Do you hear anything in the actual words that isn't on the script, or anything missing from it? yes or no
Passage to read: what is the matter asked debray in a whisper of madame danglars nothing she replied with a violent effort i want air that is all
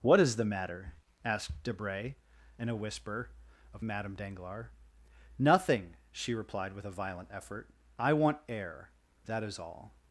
no